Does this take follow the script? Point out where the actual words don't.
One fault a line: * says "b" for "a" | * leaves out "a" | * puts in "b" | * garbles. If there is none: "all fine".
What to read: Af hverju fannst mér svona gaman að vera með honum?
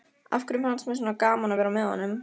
all fine